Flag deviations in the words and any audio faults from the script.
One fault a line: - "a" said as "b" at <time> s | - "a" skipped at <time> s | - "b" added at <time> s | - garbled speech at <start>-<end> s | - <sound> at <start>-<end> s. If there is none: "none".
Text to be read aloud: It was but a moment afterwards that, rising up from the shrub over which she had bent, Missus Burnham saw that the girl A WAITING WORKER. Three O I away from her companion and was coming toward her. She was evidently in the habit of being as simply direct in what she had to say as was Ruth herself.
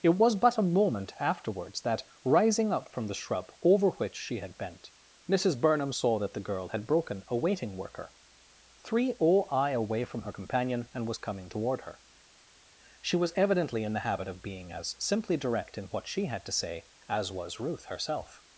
- "had broken" added at 6.7 s